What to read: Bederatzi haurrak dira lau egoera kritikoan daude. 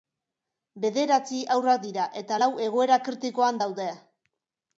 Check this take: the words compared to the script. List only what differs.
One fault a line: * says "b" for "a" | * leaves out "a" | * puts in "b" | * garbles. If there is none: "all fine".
* puts in "eta"